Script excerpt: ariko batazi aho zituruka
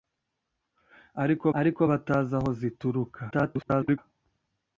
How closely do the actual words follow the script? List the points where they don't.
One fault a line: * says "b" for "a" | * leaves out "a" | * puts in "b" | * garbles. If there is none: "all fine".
* puts in "ariko"
* garbles